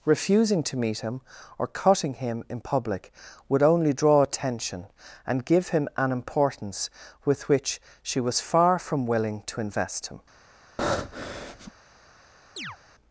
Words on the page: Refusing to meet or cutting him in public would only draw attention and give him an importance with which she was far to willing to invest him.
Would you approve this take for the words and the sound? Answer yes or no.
no